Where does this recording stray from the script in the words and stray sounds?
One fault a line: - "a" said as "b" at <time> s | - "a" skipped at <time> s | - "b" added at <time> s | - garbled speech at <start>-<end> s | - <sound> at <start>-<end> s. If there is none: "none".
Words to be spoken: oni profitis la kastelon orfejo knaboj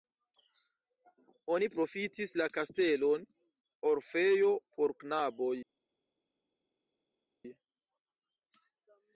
- "por" added at 4.8 s